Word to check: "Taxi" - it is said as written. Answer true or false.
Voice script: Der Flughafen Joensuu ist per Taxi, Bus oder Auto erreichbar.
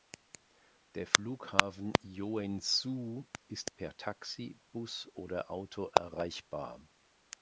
true